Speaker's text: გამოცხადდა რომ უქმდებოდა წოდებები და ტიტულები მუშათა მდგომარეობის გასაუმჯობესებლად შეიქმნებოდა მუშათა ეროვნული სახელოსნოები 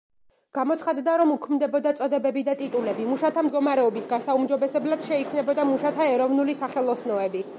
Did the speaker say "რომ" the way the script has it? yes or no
yes